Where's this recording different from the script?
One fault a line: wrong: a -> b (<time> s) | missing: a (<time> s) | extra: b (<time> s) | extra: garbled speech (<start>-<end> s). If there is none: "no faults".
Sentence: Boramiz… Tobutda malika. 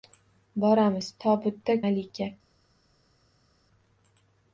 no faults